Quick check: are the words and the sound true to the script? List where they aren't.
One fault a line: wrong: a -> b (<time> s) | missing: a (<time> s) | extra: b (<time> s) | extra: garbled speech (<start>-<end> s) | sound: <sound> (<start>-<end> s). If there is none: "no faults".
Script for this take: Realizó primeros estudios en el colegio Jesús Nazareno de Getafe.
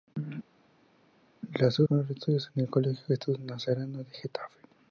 no faults